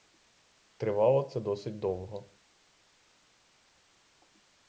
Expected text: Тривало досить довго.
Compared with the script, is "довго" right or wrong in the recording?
right